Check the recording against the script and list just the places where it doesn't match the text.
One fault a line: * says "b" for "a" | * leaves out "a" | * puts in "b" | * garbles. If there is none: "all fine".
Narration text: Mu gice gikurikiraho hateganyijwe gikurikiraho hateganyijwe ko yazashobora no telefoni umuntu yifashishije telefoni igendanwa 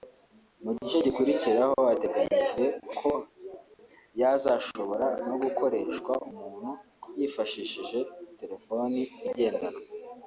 * leaves out "gikurikiraho hateganyijwe"
* says "gukoreshwa" for "telefoni"